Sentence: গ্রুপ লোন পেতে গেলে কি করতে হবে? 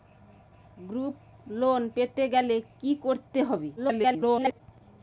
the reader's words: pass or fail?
fail